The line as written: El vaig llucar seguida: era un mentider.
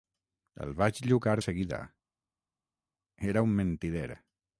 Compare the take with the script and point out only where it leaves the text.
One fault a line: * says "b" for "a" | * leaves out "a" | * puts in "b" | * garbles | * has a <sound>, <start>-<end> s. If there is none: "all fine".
all fine